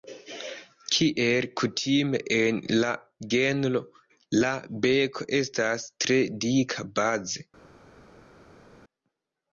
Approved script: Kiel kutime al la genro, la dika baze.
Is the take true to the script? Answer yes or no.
no